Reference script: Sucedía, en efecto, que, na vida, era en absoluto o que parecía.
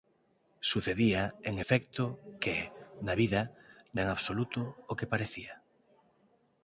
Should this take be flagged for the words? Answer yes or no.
no